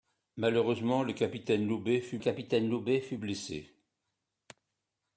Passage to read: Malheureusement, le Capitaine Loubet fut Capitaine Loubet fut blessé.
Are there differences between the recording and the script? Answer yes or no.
no